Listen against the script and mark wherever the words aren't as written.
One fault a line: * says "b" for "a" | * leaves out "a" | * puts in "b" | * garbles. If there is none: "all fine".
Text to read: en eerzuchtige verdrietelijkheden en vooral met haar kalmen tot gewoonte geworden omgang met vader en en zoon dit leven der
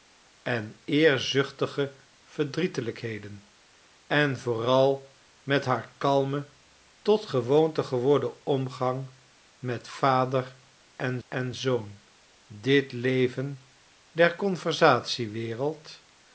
all fine